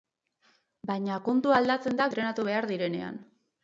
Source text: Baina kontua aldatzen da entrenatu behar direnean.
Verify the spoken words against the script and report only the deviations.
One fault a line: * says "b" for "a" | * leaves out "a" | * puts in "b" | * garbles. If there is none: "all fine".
all fine